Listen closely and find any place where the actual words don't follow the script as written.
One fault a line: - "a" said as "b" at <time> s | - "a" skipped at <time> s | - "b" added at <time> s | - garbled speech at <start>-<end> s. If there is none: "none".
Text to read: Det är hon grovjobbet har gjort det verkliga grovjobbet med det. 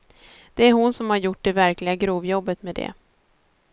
- "grovjobbet" said as "som" at 0.9 s